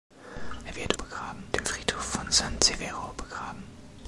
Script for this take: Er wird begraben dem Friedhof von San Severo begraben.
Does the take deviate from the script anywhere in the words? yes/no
no